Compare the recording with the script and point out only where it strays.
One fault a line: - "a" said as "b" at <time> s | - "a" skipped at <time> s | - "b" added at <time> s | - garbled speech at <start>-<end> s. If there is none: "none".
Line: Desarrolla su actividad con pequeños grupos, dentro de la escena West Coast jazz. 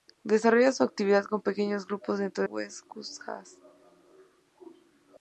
- "de la escena" skipped at 2.4 s